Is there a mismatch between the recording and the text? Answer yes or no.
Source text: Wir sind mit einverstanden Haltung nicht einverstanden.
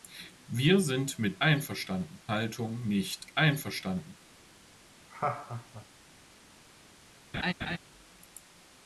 no